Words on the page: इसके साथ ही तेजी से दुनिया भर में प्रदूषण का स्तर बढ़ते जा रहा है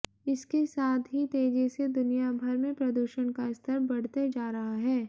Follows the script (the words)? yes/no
yes